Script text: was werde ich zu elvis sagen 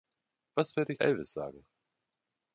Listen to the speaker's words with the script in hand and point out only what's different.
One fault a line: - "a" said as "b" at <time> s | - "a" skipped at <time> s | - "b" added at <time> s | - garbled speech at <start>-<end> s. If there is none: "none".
- "zu" skipped at 1.0 s